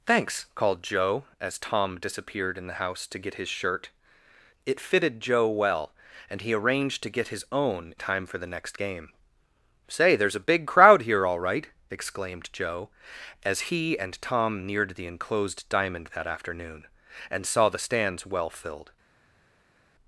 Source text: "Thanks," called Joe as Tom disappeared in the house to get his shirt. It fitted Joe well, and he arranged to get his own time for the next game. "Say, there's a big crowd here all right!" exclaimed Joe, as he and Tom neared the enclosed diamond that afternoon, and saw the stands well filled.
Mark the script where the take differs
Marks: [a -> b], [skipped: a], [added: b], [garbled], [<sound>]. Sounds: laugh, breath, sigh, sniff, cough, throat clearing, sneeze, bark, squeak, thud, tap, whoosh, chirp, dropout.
"Thanks," called Joe as Tom disappeared in the house to get his shirt. It fitted Joe well, and he arranged to get his own time for the next game. "Say, there's a big crowd here all right!" exclaimed Joe, as he and Tom neared the enclosed diamond that afternoon, and saw the stands well filled.